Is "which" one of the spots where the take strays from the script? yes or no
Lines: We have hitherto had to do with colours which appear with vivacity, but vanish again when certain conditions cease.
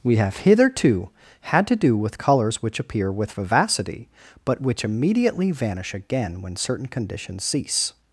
no